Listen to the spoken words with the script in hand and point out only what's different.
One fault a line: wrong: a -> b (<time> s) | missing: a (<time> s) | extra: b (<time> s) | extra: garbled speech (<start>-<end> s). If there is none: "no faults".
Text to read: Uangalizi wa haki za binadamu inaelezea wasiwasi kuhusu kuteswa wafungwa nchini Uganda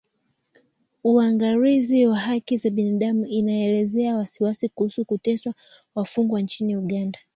no faults